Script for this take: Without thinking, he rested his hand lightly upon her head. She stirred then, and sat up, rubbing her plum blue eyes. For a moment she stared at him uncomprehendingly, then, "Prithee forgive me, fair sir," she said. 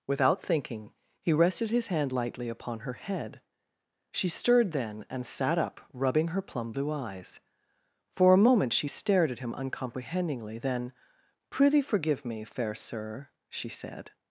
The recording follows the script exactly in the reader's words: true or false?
true